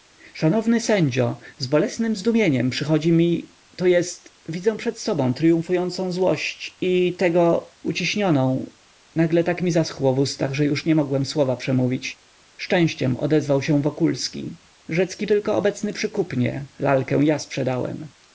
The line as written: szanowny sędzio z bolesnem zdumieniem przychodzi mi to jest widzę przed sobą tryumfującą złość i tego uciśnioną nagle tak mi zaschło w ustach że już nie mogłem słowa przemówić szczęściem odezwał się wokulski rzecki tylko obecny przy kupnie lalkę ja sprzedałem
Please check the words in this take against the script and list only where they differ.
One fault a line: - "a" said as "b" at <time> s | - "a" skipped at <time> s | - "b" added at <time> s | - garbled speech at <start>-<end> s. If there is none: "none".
none